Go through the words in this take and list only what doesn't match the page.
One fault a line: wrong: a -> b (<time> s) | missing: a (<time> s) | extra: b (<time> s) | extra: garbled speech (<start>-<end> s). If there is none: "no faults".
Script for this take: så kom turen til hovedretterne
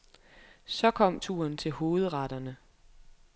no faults